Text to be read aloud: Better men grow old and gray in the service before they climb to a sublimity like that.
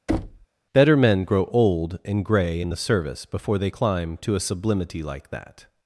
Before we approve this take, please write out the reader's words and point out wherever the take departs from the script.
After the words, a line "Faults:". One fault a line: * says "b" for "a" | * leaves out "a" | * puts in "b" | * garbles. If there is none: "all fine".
Better men grow old and gray in the service before they climb to a sublimity like that.
Faults:
all fine